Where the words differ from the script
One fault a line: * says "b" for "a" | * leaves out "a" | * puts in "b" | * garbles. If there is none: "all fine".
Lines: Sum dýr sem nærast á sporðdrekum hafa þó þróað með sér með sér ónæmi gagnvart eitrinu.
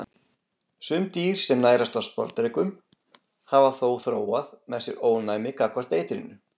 * leaves out "með sér"